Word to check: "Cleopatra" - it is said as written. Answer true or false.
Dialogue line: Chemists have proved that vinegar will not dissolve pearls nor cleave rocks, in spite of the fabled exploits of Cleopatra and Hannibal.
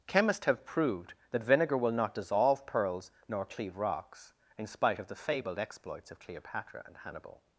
true